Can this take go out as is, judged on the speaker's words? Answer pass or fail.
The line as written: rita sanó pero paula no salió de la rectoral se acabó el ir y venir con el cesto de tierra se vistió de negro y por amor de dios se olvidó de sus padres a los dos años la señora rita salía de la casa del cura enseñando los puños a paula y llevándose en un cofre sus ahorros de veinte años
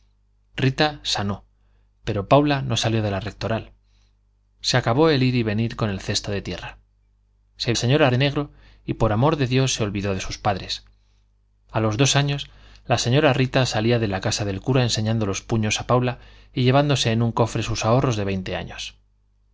fail